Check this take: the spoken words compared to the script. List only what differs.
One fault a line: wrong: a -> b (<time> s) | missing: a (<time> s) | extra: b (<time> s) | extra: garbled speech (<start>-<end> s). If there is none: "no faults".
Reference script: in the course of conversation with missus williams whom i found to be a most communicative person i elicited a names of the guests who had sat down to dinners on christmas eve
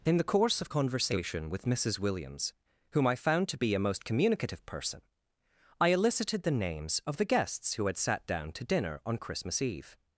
wrong: a -> the (6.4 s)
wrong: dinners -> dinner (8.6 s)